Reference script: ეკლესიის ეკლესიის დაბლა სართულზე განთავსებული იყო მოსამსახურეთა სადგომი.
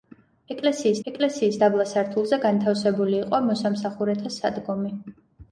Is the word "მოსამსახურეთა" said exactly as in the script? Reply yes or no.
yes